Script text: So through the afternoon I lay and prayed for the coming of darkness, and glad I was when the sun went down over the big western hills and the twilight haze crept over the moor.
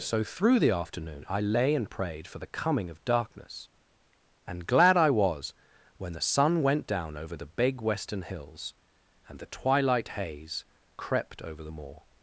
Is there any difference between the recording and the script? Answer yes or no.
no